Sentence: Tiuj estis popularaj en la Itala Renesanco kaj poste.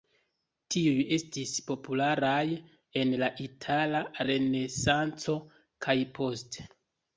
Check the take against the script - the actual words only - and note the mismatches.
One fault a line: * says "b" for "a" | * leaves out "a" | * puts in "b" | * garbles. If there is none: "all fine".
all fine